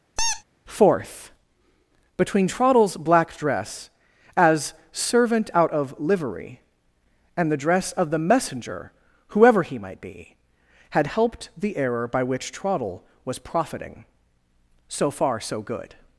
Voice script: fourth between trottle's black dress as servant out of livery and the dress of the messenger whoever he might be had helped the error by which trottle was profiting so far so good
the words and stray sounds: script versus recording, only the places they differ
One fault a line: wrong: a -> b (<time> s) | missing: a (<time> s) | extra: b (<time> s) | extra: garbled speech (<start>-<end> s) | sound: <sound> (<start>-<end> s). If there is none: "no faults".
sound: squeak (0.2-0.4 s)